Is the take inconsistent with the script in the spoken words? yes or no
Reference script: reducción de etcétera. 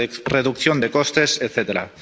yes